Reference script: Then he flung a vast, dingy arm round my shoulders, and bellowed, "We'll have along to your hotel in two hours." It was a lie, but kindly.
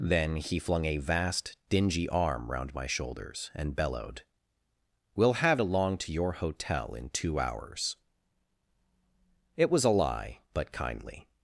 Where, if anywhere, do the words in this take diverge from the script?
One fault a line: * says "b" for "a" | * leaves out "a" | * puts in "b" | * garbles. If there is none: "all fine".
all fine